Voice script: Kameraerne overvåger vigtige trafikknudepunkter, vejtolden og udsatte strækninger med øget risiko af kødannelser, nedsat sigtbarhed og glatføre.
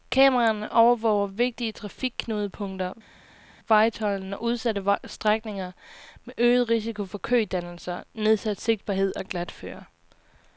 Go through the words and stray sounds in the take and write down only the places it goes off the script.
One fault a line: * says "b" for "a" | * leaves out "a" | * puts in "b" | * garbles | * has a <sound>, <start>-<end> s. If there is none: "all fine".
* says "for" for "af"